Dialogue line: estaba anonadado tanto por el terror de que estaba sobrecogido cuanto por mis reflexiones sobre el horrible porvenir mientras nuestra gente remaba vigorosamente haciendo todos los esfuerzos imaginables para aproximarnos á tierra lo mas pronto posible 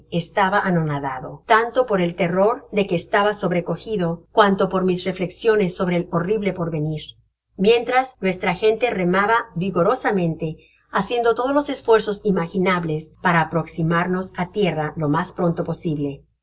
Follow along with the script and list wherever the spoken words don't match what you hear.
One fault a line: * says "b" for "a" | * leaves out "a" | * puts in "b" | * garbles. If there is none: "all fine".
all fine